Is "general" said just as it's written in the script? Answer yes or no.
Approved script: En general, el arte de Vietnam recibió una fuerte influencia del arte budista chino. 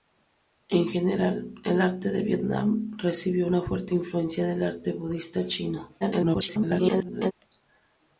yes